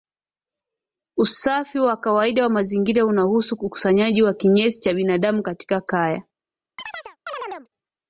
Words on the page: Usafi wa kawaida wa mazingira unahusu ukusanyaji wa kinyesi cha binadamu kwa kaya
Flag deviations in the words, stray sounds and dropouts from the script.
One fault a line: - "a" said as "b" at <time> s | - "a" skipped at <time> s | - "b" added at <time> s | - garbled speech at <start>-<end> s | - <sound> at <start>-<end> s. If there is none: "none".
- "kwa" said as "katika" at 5.4 s
- chirp at 6.8-7.7 s